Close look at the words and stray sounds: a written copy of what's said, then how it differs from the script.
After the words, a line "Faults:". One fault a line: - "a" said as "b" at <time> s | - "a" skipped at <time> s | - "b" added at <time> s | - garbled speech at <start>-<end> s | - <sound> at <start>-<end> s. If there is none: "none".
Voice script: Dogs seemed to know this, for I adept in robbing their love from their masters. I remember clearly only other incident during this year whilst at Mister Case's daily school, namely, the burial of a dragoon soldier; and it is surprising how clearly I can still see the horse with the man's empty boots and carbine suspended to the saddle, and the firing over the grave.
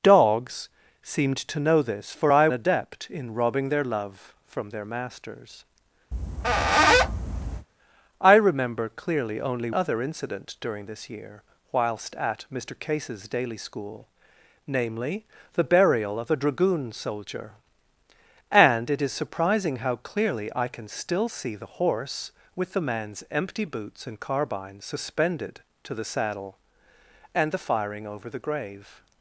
Dogs seemed to know this, for I adept in robbing their love from their masters. I remember clearly only other incident during this year whilst at Mister Case's daily school, namely, the burial of a dragoon soldier; and it is surprising how clearly I can still see the horse with the man's empty boots and carbine suspended to the saddle, and the firing over the grave.
Faults:
- squeak at 6.1-7.7 s